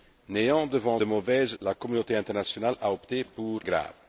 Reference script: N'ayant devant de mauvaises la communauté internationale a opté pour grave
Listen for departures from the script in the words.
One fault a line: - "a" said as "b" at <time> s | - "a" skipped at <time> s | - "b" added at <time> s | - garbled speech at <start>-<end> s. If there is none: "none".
none